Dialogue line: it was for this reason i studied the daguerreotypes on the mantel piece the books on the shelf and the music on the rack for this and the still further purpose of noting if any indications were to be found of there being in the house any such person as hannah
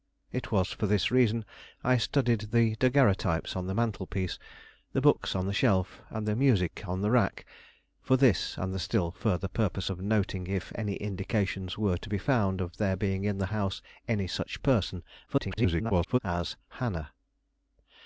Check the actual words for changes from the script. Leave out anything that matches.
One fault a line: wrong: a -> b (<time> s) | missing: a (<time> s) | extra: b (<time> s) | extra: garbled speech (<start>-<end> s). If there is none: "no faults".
extra: garbled speech (15.3-16.2 s)